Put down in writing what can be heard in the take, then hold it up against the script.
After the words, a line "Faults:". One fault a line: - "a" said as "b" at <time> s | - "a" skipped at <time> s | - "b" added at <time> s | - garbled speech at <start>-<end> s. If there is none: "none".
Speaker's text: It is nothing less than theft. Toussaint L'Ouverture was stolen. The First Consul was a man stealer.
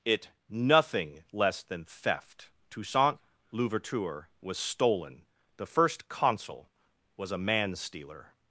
It nothing less than theft. Toussaint L'Ouverture was stolen. The First Consul was a man stealer.
Faults:
- "is" skipped at 0.3 s